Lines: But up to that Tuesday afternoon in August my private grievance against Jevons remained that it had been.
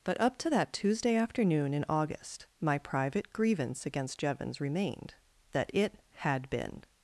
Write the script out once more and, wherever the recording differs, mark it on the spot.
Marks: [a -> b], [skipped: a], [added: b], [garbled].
But up to that Tuesday afternoon in August my private grievance against Jevons remained that it had been.